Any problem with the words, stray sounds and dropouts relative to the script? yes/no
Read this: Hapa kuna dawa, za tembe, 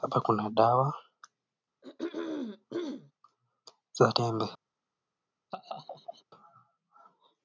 yes